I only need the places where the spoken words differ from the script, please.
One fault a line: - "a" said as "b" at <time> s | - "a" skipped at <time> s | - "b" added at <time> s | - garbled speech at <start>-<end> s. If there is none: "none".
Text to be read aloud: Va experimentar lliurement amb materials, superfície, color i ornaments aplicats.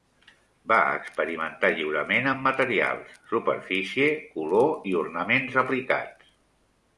none